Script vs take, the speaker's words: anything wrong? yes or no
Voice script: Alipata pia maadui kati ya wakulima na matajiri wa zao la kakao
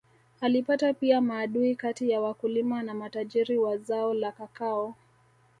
no